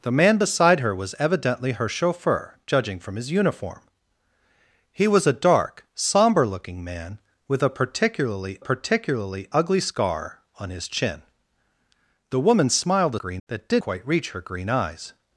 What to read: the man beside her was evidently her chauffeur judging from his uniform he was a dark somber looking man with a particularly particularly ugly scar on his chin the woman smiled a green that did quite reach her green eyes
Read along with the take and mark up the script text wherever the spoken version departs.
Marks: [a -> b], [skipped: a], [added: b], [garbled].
the man beside her was evidently her chauffeur judging from his uniform he was a dark somber looking man with a particularly particularly ugly scar on his chin the woman smiled a green that did quite reach her green eyes